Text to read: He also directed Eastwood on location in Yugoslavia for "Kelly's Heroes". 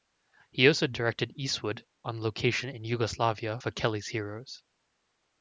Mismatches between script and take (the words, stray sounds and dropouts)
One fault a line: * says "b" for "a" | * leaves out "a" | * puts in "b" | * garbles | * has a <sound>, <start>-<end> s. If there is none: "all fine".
all fine